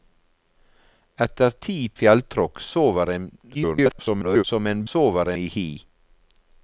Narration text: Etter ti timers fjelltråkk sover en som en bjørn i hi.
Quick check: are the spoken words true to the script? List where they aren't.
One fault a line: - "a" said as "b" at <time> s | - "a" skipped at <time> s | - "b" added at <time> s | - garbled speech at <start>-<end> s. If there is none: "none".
- "timers" skipped at 1.8 s
- garbled speech at 3.5-4.4 s
- "bjørn" said as "sover" at 4.9 s